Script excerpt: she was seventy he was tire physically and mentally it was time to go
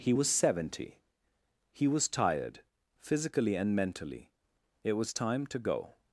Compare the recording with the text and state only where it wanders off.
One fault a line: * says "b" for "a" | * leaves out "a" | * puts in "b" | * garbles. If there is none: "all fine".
* says "he" for "she"
* says "tired" for "tire"